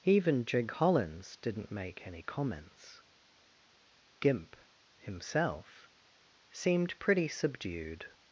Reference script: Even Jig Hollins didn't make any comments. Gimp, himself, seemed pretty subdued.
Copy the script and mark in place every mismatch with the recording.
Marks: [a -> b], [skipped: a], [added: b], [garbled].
Even Jig Hollins didn't make any comments. Gimp, himself, seemed pretty subdued.